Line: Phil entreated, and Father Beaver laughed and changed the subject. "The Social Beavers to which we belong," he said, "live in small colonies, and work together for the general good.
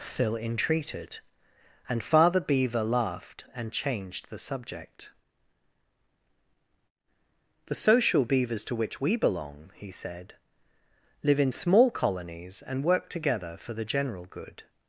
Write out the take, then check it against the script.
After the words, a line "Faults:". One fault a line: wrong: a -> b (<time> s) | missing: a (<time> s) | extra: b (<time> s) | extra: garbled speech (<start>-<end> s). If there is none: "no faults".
Phil entreated, and Father Beaver laughed and changed the subject. "The Social Beavers to which we belong," he said, "live in small colonies, and work together for the general good.
Faults:
no faults